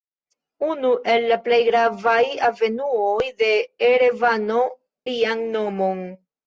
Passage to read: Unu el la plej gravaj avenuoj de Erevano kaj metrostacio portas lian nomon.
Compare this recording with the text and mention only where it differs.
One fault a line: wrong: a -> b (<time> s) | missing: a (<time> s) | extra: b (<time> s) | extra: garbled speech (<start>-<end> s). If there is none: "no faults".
missing: kaj metrostacio portas (4.6 s)